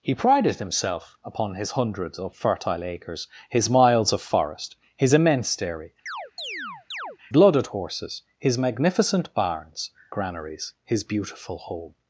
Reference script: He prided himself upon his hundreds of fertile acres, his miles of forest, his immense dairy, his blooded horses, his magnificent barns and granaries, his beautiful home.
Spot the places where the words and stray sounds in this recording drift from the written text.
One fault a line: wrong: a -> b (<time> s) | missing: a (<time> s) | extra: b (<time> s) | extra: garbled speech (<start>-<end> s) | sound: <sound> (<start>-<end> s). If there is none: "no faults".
missing: his (5.9 s)
sound: chirp (6.1-7.2 s)
missing: and (9.9 s)